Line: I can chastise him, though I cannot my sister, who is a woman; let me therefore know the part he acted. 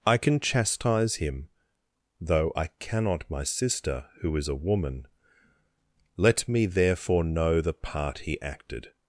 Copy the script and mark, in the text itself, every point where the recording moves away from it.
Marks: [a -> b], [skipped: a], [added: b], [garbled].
I can chastise him, though I cannot my sister, who is a woman; let me therefore know the part he acted.